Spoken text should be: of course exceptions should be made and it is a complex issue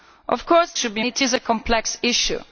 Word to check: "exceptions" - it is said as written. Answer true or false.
false